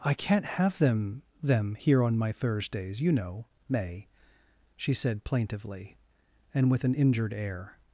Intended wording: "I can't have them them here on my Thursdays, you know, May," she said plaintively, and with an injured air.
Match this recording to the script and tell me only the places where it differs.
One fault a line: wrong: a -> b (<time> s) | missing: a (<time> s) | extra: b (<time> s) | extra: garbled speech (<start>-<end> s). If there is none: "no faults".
no faults